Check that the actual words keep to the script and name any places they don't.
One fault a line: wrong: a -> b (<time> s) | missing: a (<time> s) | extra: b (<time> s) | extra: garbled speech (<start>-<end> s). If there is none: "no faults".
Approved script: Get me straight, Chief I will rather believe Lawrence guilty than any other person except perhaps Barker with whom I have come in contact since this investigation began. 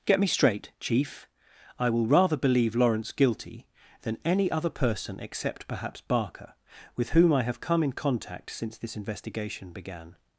no faults